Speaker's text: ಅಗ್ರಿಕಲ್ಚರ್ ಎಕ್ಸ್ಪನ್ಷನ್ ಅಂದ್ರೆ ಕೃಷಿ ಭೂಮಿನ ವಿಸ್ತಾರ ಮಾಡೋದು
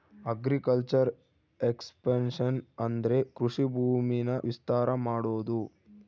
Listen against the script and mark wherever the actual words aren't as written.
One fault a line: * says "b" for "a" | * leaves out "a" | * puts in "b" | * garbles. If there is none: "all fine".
all fine